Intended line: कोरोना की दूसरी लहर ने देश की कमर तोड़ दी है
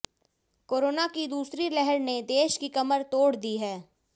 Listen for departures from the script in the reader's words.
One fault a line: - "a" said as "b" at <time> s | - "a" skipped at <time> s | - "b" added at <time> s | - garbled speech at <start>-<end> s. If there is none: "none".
none